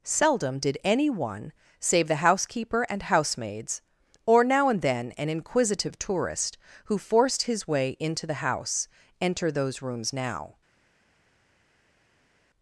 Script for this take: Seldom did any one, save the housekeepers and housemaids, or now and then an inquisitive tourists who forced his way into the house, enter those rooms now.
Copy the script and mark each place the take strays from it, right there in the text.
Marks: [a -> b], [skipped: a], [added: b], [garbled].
Seldom did any one, save the [housekeepers -> housekeeper] and housemaids, or now and then an inquisitive [tourists -> tourist] who forced his way into the house, enter those rooms now.